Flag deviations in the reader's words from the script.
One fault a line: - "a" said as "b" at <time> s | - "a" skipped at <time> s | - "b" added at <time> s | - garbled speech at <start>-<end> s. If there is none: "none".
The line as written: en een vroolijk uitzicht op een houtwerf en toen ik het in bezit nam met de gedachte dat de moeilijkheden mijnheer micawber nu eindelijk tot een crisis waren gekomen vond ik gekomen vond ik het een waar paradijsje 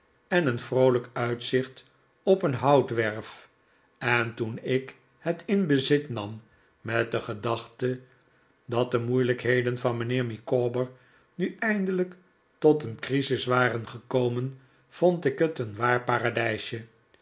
- "van" added at 9.8 s
- "gekomen vond ik" skipped at 15.4 s